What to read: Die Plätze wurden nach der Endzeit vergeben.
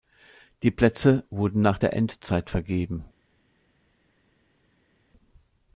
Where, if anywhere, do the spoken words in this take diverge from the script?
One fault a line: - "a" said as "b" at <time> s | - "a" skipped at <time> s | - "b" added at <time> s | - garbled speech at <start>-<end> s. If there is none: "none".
none